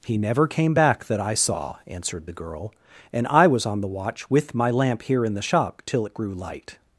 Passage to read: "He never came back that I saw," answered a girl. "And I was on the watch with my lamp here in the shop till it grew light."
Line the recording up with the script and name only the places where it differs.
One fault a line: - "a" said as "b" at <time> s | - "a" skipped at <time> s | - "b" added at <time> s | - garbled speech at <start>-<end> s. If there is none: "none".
- "a" said as "the" at 2.3 s